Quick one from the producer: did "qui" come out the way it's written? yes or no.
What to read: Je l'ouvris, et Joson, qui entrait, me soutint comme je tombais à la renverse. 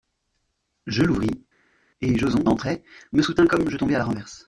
no